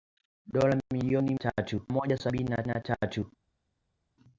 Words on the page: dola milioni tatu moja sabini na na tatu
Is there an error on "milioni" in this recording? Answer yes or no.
no